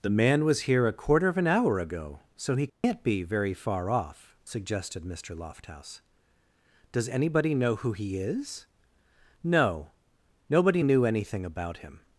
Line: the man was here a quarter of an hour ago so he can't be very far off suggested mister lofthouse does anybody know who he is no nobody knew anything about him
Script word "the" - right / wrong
right